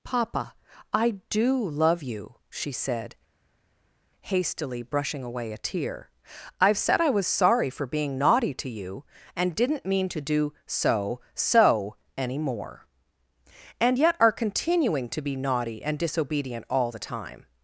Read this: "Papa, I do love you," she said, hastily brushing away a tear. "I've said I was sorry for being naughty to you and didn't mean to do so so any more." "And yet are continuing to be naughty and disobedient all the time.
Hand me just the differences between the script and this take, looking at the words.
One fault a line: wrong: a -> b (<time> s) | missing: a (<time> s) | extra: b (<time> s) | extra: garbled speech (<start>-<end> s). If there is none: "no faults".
no faults